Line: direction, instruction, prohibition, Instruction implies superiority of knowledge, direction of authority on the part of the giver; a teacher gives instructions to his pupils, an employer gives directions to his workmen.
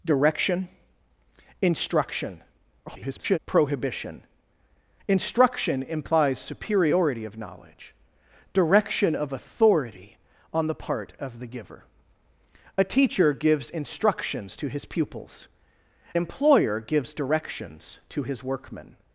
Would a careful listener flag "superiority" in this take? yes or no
no